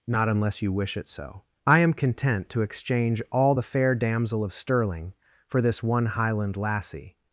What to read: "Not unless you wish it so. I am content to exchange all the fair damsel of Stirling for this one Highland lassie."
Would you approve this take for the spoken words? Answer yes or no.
yes